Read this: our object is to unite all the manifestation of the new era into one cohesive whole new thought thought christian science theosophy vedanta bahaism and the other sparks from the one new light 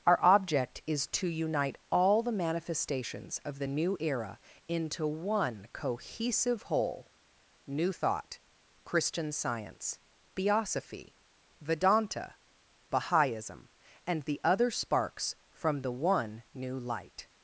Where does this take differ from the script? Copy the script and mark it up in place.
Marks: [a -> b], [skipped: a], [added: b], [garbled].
our object is to unite all the [manifestation -> manifestations] of the new era into one cohesive whole new thought [skipped: thought] christian science theosophy vedanta bahaism and the other sparks from the one new light